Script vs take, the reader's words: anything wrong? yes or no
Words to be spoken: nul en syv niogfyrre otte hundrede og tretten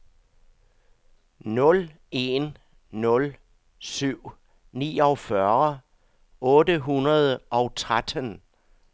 yes